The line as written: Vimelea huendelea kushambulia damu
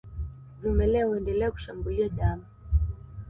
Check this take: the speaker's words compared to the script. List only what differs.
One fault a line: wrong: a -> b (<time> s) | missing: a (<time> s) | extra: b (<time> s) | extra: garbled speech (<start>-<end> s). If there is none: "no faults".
no faults